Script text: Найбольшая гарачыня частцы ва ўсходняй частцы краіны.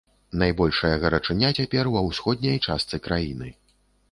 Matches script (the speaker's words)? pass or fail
fail